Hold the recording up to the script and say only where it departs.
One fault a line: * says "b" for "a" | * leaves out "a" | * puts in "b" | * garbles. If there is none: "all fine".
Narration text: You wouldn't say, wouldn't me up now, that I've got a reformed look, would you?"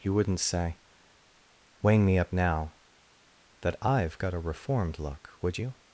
* says "weighing" for "wouldn't"